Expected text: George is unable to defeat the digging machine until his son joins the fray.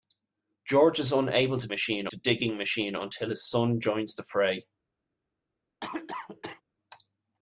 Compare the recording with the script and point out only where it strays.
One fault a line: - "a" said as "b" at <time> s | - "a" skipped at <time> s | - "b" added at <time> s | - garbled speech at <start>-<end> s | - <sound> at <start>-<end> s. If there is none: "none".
- "defeat" said as "machine" at 1.7 s
- cough at 5.8-6.6 s